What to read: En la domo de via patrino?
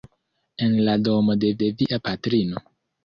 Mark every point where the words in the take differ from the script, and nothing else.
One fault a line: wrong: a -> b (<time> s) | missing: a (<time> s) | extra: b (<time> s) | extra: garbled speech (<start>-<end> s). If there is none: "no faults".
extra: de (1.6 s)